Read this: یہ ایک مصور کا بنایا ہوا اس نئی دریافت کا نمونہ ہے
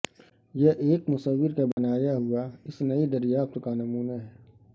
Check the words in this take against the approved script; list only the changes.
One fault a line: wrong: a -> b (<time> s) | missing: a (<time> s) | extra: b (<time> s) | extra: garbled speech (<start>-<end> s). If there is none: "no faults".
no faults